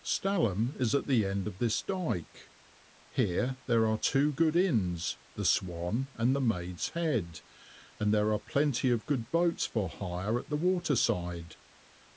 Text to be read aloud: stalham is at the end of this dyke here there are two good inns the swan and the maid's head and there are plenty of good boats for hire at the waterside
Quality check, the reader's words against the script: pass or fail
pass